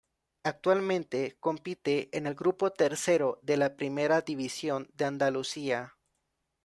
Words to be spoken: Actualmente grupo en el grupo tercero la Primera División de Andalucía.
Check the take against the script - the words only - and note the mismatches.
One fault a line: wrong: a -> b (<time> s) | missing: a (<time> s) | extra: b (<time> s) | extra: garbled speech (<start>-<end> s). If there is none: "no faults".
wrong: grupo -> compite (1.4 s)
extra: de (3.4 s)